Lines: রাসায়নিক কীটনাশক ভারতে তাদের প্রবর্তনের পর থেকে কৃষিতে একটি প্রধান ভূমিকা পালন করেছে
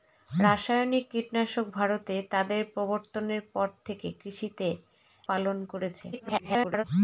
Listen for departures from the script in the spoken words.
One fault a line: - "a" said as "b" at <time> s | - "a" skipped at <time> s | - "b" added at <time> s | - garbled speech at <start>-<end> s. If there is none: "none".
- "একটি প্রধান ভূমিকা" skipped at 4.7 s
- garbled speech at 6.1-6.8 s